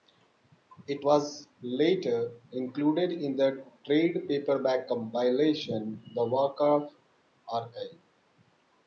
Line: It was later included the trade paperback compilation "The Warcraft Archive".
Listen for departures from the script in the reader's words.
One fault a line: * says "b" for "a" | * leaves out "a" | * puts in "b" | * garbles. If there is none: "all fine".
* puts in "in"